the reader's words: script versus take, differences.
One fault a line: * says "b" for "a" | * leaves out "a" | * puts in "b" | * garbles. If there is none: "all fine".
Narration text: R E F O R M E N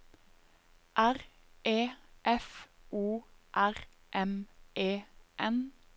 all fine